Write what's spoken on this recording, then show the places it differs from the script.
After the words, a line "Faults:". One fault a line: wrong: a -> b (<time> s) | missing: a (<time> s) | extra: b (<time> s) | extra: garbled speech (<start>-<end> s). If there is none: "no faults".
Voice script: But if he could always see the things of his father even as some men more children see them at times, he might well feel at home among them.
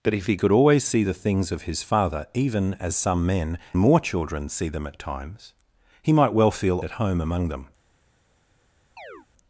But if he could always see the things of his father even as some men more children see them at times, he might well feel at home among them.
Faults:
no faults